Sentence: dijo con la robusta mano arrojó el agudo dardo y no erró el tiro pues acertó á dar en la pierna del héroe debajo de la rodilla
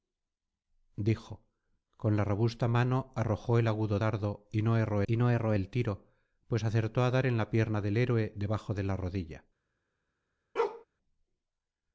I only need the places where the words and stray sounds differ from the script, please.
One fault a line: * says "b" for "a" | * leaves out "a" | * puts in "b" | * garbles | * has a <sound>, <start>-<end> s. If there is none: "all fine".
* puts in "y no erró"
* has a bark, 10.6-10.9 s